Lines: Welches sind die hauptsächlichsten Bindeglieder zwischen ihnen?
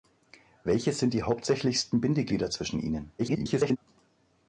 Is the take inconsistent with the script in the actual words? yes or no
yes